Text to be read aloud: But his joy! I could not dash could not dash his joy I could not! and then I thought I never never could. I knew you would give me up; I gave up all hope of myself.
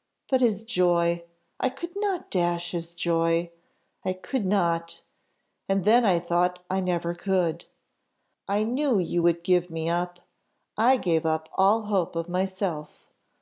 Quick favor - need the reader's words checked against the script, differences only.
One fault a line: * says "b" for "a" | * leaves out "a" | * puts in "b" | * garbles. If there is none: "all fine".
* leaves out "could not dash"
* leaves out "never"